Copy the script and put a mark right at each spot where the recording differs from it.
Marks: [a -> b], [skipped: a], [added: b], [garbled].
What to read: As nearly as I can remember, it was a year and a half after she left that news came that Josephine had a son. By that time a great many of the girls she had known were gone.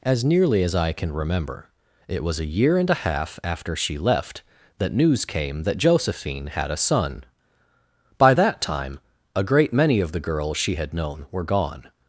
As nearly as I can remember, it was a year and a half after she left that news came that Josephine had a son. By that time a great many of the girls she had known were gone.